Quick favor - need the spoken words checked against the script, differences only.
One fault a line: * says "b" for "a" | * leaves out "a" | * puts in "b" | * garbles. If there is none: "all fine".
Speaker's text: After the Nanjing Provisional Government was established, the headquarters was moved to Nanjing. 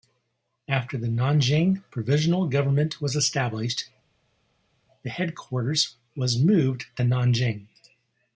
all fine